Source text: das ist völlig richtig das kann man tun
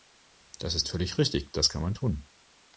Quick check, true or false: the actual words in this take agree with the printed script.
true